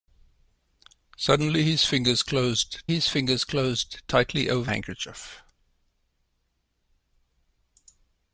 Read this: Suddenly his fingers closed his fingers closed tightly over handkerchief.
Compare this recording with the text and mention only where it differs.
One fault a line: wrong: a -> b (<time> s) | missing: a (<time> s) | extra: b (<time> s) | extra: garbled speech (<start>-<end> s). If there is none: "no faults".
no faults